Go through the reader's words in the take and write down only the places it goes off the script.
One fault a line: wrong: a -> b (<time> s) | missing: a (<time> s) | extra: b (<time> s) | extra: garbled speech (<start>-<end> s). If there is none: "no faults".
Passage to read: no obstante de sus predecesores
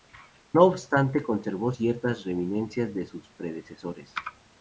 extra: conservó ciertas reminiscencias (1.2 s)